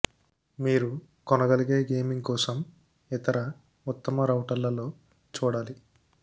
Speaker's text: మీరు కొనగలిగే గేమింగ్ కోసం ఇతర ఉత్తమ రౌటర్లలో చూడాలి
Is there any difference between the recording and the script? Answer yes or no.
no